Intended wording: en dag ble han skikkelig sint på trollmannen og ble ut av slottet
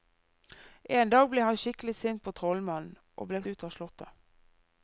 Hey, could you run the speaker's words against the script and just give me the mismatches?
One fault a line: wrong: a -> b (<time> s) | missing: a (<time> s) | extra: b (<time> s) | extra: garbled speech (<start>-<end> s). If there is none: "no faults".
no faults